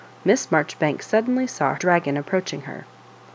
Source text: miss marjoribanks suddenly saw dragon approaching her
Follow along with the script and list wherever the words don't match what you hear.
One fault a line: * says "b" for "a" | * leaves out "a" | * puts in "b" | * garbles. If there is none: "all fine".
all fine